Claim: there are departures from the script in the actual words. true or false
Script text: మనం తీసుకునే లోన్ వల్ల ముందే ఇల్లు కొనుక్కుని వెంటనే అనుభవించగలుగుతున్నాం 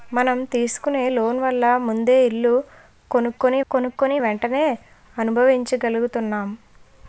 true